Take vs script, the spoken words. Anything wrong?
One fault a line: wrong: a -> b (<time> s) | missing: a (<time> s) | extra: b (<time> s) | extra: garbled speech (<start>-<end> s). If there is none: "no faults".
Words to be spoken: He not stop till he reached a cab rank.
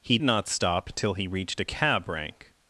no faults